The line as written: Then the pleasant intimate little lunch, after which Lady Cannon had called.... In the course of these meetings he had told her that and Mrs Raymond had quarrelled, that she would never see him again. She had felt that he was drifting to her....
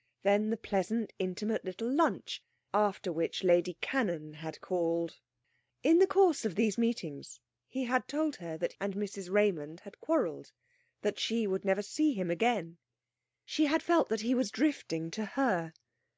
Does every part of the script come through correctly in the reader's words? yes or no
yes